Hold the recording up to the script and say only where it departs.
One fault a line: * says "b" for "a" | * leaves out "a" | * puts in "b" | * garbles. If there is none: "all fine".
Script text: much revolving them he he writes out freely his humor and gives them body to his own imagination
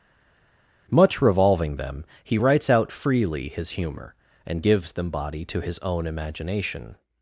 * leaves out "he"